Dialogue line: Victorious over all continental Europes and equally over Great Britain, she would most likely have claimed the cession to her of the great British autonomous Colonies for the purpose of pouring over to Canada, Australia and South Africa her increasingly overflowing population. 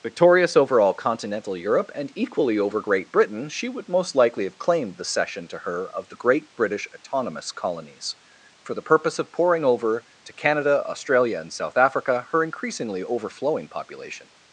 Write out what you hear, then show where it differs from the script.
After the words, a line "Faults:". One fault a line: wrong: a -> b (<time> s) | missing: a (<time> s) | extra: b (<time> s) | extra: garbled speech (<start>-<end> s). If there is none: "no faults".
Victorious over all continental Europe and equally over Great Britain, she would most likely have claimed the cession to her of the great British autonomous Colonies for the purpose of pouring over to Canada, Australia and South Africa her increasingly overflowing population.
Faults:
wrong: Europes -> Europe (1.6 s)